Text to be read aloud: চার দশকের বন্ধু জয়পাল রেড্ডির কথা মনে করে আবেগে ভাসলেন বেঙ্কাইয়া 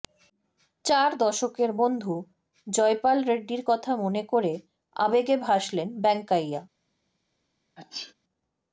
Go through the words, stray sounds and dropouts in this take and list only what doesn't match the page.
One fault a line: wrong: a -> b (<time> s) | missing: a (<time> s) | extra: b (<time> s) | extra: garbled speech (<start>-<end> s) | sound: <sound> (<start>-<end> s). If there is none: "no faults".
sound: sneeze (7.8-8.1 s)